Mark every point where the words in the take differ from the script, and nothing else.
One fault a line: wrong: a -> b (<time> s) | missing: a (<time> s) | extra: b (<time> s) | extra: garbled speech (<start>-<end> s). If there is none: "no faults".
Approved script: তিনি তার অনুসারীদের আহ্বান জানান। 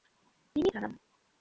missing: তার অনুসারীদের আহ্বান (0.7 s)